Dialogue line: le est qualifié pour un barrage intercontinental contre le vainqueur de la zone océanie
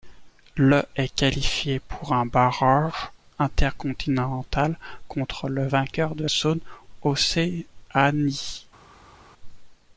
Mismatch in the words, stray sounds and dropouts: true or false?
true